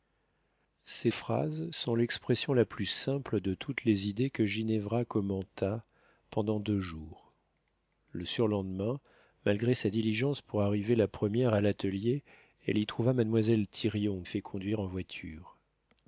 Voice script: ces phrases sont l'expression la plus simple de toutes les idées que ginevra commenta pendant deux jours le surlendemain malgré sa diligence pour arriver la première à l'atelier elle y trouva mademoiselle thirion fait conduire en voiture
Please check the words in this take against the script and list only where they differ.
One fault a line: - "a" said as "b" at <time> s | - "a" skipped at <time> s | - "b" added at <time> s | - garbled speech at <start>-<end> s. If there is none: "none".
none